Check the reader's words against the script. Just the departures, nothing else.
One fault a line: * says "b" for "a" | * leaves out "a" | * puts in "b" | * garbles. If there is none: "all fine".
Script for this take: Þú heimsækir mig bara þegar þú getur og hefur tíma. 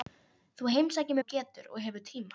* leaves out "mig bara þegar"